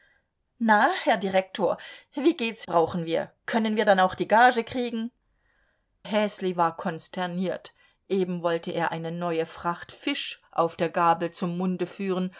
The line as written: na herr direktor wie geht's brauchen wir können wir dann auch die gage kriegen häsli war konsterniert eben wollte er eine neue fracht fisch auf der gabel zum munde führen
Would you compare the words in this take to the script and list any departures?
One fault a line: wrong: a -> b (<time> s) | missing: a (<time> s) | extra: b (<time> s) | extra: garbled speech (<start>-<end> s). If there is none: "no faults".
no faults